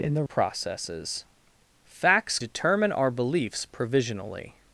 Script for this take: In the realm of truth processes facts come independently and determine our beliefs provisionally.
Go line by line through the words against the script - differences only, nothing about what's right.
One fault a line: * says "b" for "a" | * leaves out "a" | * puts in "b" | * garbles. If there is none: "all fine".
* leaves out "realm of truth"
* leaves out "come independently and"